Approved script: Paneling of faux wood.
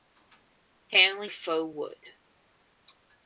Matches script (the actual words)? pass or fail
pass